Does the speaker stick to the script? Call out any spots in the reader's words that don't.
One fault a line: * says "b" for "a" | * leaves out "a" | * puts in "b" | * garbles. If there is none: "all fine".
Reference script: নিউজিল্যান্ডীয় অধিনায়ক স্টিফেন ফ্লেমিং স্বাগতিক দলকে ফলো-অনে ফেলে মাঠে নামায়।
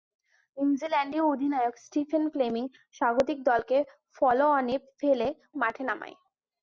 all fine